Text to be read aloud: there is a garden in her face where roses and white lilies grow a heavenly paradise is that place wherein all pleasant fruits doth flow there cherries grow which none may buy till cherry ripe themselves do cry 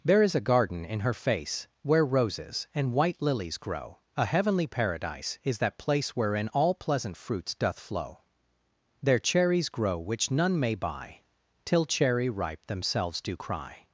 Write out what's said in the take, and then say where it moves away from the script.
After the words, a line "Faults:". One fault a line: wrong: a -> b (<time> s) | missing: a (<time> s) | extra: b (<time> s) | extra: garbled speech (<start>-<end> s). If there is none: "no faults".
there is a garden in her face where roses and white lilies grow a heavenly paradise is that place wherein all pleasant fruits doth flow there cherries grow which none may buy till cherry ripe themselves do cry
Faults:
no faults